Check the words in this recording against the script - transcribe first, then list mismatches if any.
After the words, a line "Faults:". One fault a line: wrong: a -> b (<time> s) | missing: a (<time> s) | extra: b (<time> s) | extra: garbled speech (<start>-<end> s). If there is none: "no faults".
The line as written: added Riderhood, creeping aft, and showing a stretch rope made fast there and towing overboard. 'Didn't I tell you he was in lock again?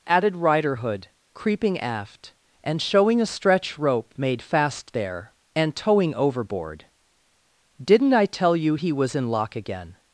added Riderhood, creeping aft, and showing a stretch rope made fast there and towing overboard. 'Didn't I tell you he was in lock again?
Faults:
no faults